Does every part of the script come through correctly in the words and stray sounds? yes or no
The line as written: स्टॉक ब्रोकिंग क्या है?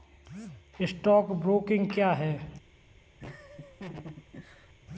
no